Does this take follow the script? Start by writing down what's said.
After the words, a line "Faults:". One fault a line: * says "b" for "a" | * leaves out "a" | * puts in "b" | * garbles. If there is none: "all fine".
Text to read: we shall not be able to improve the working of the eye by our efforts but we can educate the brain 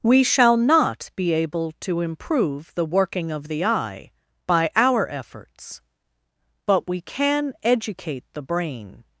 we shall not be able to improve the working of the eye by our efforts but we can educate the brain
Faults:
all fine